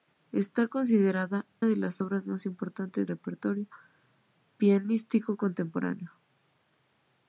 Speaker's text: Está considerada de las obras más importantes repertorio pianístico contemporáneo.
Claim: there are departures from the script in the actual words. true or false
false